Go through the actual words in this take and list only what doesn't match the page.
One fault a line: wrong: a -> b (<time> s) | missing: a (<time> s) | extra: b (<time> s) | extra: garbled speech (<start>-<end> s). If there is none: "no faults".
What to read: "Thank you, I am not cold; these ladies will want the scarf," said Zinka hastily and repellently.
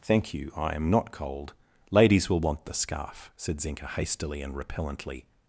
missing: these (1.5 s)